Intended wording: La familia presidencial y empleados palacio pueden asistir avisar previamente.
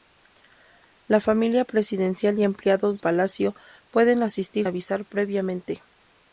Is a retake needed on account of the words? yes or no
no